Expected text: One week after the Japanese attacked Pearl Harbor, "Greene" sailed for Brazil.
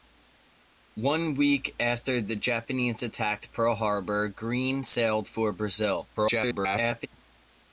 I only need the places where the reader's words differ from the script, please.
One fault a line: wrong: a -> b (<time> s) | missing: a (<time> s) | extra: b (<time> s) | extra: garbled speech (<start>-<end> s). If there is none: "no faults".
extra: garbled speech (6.1-7.1 s)